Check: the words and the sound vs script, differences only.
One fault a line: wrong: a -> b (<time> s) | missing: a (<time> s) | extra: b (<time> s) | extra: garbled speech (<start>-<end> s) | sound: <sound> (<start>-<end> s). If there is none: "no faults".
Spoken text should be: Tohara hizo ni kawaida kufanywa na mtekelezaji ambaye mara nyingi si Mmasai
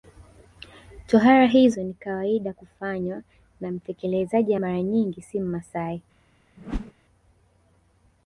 missing: ambaye (4.5 s)
sound: whoosh (6.6-6.9 s)